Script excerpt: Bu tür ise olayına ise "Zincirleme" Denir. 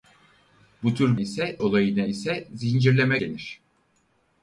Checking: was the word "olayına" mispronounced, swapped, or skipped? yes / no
no